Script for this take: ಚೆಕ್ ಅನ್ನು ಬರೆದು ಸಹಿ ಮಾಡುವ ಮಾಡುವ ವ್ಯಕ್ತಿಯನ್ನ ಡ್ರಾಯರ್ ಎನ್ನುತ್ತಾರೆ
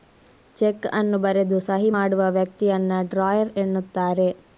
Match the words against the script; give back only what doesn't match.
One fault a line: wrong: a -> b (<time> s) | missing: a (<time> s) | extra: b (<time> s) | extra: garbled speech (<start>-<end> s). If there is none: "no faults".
missing: ಮಾಡುವ (2.2 s)